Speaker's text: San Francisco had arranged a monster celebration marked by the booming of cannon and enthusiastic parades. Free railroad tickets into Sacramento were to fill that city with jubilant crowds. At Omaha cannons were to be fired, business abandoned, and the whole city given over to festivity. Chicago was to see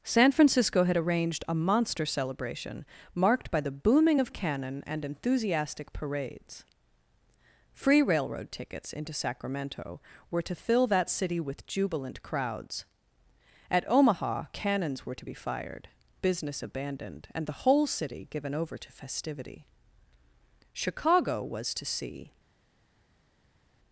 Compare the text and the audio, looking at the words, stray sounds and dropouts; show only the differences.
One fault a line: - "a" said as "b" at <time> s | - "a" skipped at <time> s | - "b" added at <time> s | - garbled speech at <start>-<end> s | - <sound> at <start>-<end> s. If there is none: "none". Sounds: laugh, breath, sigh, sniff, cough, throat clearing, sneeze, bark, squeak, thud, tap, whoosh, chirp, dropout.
none